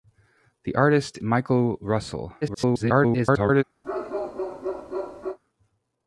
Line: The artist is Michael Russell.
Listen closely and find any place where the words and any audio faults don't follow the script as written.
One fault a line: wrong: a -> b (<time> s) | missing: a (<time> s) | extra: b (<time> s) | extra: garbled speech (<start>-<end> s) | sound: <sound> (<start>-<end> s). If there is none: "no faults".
missing: is (1.2 s)
extra: garbled speech (2.4-3.6 s)
sound: bark (3.8-5.4 s)